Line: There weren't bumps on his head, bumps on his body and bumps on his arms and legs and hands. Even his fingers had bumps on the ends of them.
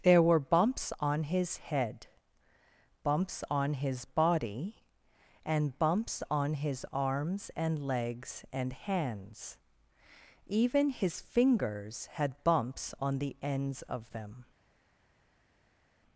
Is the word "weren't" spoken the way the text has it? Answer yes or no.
no